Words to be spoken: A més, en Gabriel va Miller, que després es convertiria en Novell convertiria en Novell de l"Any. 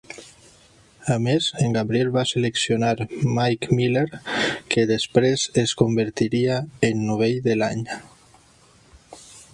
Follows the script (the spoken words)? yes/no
no